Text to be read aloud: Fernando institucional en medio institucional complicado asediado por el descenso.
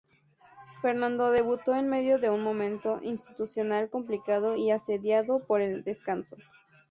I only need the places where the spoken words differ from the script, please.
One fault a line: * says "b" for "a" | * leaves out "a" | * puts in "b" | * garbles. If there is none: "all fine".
* says "debutó" for "institucional"
* puts in "de un momento"
* puts in "y"